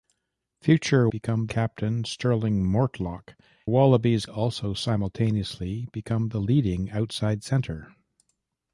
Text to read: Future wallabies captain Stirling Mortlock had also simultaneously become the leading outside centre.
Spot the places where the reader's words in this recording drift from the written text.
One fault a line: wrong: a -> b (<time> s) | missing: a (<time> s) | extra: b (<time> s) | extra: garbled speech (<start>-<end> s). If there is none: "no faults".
wrong: wallabies -> become (1.1 s)
wrong: had -> wallabies (3.6 s)